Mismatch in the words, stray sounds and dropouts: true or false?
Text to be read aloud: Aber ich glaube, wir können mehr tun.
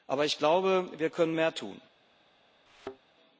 true